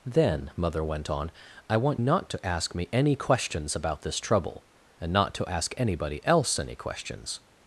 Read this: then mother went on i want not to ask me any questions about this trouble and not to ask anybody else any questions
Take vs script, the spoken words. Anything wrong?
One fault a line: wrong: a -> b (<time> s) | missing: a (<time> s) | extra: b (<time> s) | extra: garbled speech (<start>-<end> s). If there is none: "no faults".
no faults